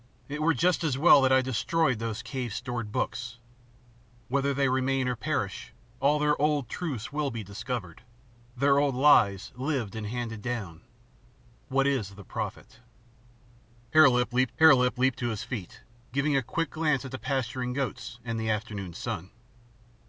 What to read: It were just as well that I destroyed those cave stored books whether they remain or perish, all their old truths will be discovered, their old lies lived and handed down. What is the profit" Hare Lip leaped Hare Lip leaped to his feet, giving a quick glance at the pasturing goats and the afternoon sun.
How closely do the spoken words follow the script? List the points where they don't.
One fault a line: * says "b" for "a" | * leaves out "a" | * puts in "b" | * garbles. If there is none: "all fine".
all fine